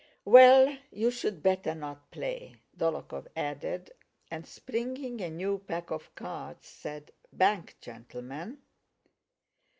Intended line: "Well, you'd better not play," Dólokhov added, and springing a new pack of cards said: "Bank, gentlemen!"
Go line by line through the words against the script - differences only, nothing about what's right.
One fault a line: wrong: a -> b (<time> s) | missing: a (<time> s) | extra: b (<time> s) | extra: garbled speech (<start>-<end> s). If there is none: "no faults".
no faults